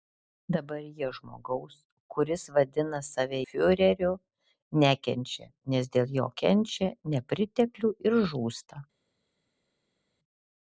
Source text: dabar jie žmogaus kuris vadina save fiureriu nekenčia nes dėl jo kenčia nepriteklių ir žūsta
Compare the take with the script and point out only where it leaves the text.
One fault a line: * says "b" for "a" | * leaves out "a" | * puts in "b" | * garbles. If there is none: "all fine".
all fine